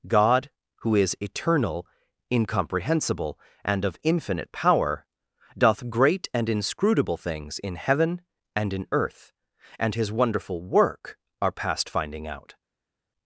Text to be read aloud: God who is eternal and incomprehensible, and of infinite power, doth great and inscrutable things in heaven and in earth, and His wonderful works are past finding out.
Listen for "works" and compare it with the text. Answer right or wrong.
wrong